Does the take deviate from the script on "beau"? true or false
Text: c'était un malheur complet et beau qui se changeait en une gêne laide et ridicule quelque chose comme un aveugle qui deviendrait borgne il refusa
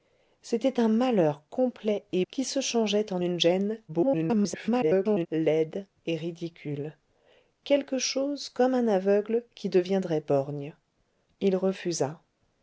true